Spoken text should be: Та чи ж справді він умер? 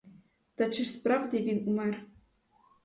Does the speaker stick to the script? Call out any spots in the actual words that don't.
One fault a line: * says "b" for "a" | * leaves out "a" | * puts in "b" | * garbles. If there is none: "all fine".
all fine